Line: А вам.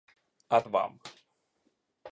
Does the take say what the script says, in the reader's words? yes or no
yes